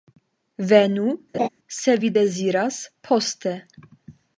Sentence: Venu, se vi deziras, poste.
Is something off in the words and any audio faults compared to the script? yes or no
yes